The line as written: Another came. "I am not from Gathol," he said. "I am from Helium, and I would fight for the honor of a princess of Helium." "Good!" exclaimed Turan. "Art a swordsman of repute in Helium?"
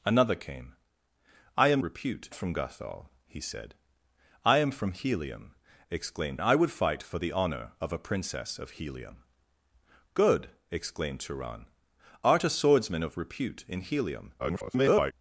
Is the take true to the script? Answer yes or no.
no